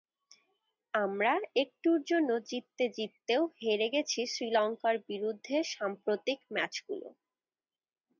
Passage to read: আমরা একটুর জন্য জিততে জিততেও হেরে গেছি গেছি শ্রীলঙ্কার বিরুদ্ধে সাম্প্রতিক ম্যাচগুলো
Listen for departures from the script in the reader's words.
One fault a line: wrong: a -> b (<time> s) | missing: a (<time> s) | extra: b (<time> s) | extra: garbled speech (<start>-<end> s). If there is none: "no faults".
missing: গেছি (4.2 s)